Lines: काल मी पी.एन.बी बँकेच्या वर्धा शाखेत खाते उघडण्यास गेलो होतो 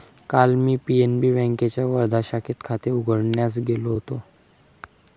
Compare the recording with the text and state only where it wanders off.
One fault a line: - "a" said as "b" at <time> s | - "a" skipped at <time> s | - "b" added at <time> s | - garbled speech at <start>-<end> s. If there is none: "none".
none